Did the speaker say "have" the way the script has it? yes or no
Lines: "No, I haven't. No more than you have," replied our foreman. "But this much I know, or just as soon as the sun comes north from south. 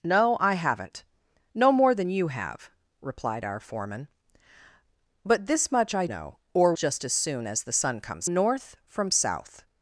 yes